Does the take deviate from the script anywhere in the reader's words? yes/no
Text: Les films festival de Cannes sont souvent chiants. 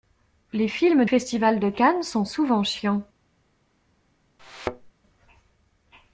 no